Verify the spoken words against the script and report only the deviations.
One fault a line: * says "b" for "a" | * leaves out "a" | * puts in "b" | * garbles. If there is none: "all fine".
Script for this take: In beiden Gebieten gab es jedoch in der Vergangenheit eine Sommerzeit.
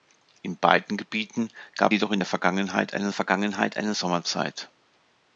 * leaves out "es"
* puts in "Vergangenheit eine"